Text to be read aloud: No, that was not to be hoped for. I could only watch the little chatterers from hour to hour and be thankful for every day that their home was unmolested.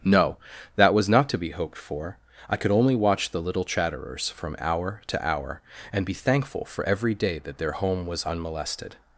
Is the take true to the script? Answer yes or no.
yes